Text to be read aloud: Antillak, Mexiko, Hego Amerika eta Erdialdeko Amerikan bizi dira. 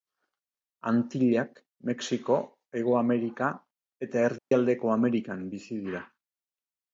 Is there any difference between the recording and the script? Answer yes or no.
no